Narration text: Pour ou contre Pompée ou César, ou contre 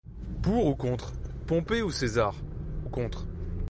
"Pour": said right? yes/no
yes